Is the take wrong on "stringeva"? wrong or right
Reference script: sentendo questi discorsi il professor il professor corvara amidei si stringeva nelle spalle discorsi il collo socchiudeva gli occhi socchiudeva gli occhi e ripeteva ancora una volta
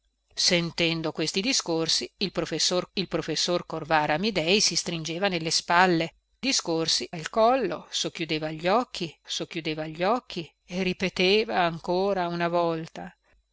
right